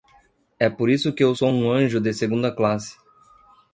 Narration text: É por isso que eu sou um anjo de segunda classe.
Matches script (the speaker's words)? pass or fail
pass